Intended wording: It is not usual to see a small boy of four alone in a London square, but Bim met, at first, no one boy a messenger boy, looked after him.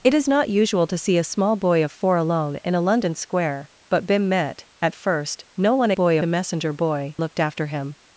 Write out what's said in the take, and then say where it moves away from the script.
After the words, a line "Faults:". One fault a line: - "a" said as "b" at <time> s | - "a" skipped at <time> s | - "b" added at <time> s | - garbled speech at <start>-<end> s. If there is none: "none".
It is not usual to see a small boy of four alone in a London square, but Bim met, at first, no one boy a messenger boy, looked after him.
Faults:
none